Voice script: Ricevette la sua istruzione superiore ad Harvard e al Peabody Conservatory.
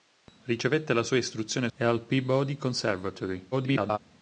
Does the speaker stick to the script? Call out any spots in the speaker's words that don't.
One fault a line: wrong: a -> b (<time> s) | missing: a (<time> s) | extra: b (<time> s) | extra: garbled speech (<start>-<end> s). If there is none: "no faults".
missing: superiore ad Harvard (1.7 s)
extra: garbled speech (3.5-4.0 s)